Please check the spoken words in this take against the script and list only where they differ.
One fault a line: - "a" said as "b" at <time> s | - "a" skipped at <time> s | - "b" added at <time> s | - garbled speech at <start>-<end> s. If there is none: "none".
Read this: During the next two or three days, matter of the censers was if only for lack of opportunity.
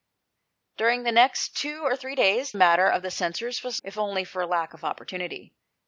none